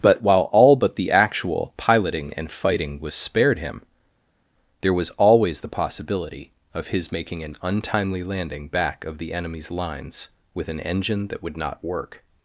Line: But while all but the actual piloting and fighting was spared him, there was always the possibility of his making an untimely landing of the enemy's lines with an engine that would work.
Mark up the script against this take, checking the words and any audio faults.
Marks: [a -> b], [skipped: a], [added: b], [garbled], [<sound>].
But while all but the actual piloting and fighting was spared him, there was always the possibility of his making an untimely landing [added: back] of the enemy's lines with an engine that would [added: not] work.